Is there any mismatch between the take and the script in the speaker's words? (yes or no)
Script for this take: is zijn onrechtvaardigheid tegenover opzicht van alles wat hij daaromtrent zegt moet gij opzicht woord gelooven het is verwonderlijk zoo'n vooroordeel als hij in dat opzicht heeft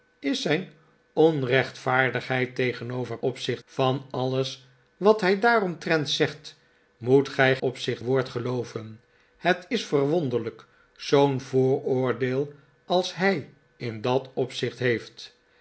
no